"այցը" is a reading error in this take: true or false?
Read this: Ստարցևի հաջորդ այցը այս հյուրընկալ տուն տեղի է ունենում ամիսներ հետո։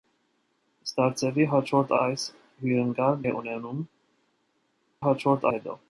true